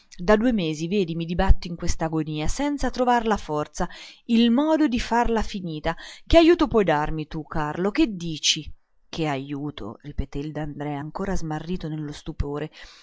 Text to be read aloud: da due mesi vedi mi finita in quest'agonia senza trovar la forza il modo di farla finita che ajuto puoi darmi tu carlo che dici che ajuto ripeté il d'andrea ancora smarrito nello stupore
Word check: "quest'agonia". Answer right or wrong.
right